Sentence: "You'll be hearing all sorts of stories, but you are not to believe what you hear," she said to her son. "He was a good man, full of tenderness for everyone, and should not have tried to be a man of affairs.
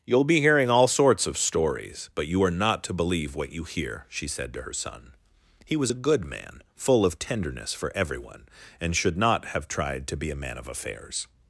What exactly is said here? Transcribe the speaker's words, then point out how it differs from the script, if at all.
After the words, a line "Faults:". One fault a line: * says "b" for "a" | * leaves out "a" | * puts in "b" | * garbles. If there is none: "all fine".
"You'll be hearing all sorts of stories, but you are not to believe what you hear," she said to her son. "He was a good man, full of tenderness for everyone, and should not have tried to be a man of affairs.
Faults:
all fine